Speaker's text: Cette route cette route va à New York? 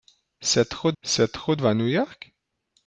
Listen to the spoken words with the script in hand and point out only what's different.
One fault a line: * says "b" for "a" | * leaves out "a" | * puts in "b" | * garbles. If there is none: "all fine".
all fine